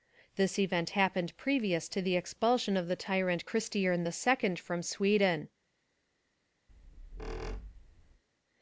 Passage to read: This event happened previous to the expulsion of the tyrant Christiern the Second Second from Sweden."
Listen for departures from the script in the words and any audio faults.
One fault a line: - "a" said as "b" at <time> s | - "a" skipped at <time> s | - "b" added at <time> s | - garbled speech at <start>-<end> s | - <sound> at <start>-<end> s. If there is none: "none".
- "Second" skipped at 4.6 s
- squeak at 6.7-8.2 s